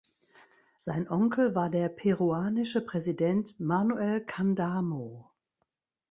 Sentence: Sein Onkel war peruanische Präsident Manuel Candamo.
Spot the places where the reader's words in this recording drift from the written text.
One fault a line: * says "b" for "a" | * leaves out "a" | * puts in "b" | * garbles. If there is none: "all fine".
* puts in "der"